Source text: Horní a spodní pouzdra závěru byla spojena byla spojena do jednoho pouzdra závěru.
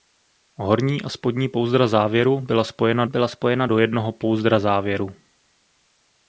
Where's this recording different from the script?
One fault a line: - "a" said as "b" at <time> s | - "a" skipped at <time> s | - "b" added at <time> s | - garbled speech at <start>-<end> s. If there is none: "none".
none